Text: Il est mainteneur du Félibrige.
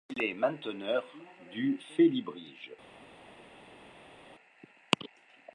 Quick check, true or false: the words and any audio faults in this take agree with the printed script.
true